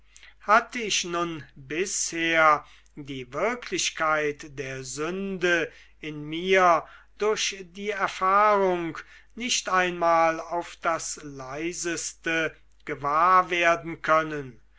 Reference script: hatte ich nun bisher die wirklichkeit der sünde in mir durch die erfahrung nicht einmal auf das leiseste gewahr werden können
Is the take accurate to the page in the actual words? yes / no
yes